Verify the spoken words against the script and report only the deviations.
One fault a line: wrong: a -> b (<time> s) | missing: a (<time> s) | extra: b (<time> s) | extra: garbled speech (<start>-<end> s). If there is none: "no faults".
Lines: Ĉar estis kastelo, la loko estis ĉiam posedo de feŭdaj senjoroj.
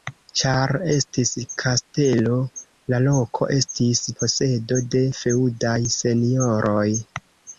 missing: ĉiam (4.0 s)